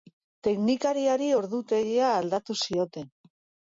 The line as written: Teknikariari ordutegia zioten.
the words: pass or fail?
fail